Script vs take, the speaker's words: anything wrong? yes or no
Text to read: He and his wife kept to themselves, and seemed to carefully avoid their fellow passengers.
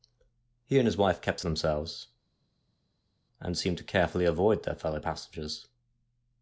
no